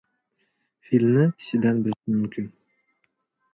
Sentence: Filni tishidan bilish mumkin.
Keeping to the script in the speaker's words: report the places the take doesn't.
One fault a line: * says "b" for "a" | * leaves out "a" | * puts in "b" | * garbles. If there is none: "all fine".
all fine